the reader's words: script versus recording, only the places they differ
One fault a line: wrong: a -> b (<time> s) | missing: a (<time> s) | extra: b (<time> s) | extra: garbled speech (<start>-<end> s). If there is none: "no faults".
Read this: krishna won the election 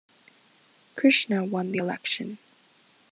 no faults